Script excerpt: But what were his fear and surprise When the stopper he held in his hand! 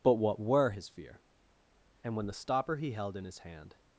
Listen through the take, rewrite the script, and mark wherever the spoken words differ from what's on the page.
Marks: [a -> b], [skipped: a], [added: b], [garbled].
But what were his fear and [skipped: surprise] When the stopper he held in his hand!